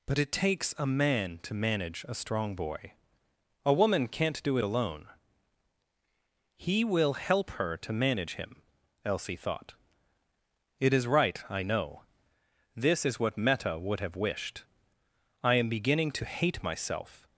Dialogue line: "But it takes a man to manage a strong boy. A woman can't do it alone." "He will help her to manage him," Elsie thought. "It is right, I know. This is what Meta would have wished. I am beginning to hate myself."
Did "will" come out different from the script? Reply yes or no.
no